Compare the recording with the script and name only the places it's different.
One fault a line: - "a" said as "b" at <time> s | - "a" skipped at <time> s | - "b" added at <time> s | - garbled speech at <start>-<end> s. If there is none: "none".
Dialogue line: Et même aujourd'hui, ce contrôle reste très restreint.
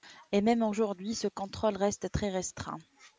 none